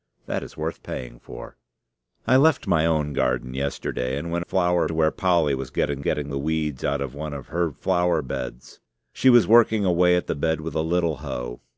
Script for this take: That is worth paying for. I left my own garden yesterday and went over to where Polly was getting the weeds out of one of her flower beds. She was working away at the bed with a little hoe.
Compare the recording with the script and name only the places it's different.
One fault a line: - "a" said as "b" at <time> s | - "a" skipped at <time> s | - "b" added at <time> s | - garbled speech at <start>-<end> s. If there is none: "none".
- "over" said as "flower" at 4.4 s
- "getting" added at 6.0 s